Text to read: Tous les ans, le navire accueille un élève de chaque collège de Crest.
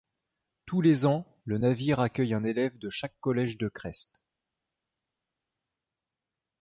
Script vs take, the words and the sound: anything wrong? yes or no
no